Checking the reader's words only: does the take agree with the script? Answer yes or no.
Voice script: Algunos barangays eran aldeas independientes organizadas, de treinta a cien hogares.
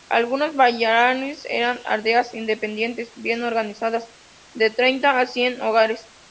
no